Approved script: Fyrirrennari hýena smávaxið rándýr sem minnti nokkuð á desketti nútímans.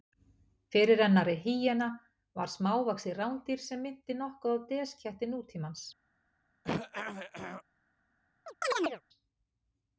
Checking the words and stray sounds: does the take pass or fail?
fail